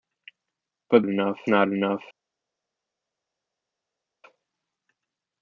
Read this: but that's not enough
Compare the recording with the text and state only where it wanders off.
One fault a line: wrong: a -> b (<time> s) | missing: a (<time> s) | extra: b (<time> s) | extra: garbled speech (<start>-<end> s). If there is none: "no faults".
wrong: that's -> enough (1.0 s)